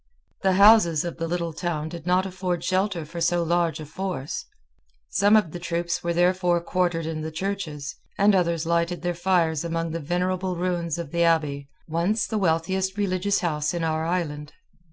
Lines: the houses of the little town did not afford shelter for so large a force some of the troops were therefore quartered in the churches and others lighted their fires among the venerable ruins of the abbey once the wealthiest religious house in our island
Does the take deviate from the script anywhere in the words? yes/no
no